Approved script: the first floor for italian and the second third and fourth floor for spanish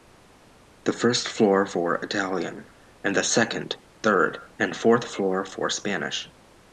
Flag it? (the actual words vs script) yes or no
no